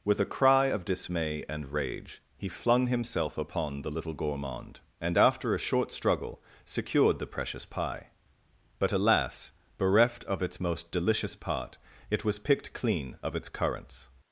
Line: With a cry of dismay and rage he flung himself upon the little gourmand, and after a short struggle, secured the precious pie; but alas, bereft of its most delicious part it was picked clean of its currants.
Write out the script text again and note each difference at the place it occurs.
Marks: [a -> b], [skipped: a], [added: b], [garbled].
With a cry of dismay and rage he flung himself upon the little gourmand, and after a short struggle, secured the precious pie; but alas, bereft of its most delicious part it was picked clean of its currants.